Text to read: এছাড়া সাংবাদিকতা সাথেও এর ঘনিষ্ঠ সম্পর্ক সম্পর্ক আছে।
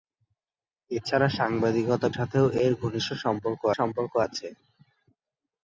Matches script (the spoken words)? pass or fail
pass